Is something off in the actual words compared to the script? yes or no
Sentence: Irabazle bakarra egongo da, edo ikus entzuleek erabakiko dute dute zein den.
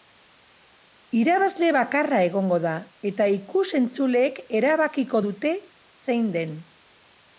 yes